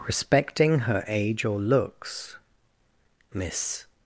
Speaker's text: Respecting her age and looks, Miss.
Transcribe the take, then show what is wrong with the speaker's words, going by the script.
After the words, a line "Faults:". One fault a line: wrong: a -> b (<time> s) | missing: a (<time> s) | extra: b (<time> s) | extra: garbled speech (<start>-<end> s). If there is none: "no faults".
Respecting her age or looks, Miss.
Faults:
wrong: and -> or (1.4 s)